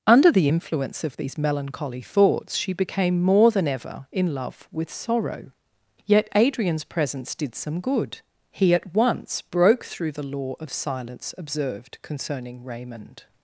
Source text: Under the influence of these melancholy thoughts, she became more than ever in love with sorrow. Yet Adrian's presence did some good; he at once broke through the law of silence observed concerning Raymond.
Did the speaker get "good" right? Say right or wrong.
right